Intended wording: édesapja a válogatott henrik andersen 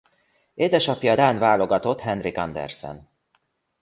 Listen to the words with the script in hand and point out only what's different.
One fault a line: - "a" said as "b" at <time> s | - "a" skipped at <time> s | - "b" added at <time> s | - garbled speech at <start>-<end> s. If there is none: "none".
- "dán" added at 1.1 s